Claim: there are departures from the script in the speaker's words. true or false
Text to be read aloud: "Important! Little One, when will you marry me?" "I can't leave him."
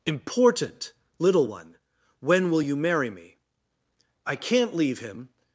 false